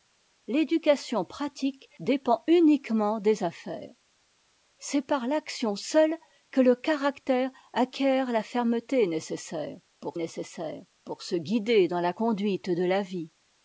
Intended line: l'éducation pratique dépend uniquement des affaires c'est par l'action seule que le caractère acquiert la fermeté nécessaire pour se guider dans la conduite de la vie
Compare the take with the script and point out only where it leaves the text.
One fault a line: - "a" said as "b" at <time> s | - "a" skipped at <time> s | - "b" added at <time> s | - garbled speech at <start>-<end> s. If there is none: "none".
- "nécessaire pour" added at 10.1 s